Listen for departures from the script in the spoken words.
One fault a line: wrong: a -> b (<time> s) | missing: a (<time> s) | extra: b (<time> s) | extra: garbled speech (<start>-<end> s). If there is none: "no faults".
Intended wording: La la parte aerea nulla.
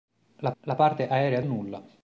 no faults